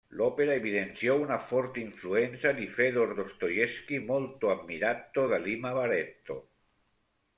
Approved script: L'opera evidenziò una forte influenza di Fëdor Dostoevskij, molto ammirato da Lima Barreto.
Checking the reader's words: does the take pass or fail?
pass